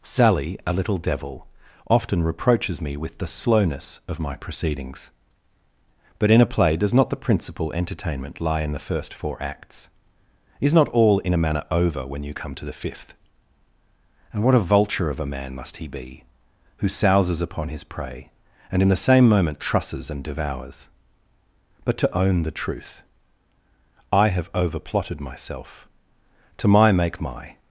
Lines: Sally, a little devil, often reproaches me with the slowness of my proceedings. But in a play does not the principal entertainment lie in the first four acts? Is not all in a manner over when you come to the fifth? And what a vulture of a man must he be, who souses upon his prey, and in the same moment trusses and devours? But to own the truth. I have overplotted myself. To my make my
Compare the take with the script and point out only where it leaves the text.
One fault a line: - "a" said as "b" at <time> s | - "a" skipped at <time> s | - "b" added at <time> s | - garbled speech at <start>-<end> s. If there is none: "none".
none